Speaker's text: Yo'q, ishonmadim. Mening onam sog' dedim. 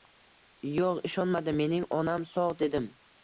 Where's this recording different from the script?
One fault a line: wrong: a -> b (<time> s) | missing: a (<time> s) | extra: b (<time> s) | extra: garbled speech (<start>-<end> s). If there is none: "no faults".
no faults